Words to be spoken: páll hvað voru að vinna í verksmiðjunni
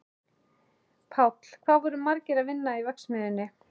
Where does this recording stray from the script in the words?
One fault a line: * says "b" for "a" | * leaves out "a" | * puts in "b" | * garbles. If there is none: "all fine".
* puts in "margir"